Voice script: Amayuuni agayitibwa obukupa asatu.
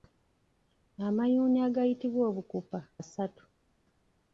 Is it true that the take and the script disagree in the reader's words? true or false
false